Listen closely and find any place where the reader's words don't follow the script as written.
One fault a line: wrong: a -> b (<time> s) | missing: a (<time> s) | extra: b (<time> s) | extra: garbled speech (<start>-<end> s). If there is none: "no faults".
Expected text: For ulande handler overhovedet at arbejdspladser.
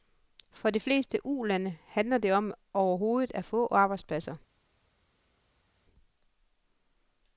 extra: de fleste (0.7 s)
extra: det om (2.2 s)
extra: få (3.4 s)